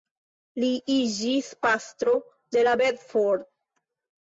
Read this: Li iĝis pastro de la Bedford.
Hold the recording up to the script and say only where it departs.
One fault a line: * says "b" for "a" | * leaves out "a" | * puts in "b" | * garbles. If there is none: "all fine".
all fine